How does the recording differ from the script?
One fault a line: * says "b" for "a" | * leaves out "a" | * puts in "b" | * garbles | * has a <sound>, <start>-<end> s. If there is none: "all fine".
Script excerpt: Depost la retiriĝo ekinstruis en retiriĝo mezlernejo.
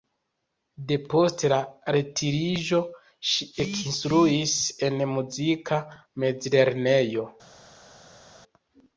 * puts in "ŝi"
* says "muzika" for "retiriĝo"